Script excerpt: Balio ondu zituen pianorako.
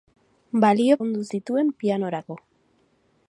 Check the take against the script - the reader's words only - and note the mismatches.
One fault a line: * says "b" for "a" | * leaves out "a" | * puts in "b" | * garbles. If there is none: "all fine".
all fine